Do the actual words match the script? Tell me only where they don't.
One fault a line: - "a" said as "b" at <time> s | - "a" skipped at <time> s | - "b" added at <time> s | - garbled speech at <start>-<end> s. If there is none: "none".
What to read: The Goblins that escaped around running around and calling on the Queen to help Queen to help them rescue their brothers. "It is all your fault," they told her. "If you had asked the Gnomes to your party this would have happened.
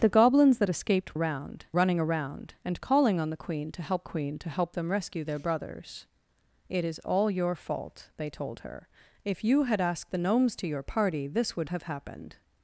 none